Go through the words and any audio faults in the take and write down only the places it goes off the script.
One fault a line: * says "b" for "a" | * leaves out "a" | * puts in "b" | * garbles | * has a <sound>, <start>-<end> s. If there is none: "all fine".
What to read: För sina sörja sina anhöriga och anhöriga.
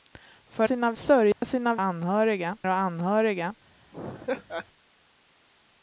* has a dropout, 1.3-1.4 s
* has a laugh, 3.9-4.7 s